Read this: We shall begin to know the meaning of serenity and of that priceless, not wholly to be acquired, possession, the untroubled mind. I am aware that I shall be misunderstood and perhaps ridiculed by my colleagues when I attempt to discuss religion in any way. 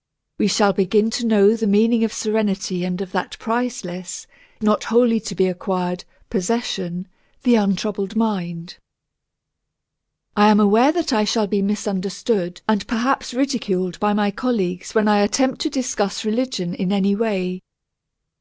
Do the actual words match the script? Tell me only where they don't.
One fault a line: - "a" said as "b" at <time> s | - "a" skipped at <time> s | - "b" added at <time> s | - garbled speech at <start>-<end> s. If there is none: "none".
none